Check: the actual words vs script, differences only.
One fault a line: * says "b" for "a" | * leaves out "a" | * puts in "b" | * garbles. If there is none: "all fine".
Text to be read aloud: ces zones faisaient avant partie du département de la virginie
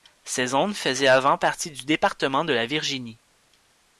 all fine